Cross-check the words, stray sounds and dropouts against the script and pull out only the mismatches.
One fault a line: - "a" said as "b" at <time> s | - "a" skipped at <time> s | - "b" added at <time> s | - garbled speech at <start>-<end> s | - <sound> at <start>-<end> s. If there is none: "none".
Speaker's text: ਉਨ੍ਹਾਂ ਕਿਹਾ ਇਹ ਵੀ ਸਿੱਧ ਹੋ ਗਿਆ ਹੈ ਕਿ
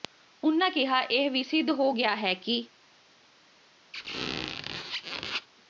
- squeak at 3.9-5.5 s